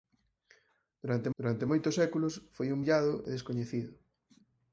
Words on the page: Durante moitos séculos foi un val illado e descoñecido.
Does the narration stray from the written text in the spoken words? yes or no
yes